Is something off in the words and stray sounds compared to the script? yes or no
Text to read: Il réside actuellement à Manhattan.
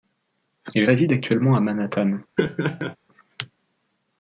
yes